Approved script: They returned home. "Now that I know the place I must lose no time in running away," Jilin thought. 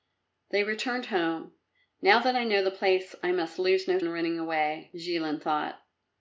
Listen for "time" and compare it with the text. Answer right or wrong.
wrong